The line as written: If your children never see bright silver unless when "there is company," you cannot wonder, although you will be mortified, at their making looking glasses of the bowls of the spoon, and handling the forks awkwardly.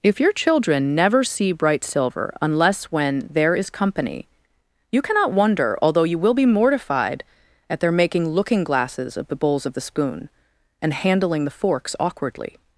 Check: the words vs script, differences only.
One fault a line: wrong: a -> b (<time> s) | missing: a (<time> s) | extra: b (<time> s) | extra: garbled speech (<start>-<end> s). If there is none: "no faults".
no faults